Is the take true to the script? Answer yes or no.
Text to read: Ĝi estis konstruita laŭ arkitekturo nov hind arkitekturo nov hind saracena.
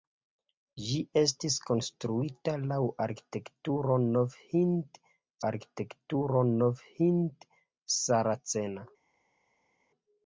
yes